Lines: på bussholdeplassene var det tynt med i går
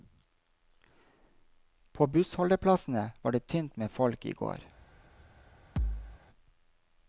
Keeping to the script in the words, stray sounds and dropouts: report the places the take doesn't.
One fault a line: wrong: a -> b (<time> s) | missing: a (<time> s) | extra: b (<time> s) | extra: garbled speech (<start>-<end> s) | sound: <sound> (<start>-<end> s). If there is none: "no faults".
extra: folk (3.9 s)
sound: thud (5.8-6.2 s)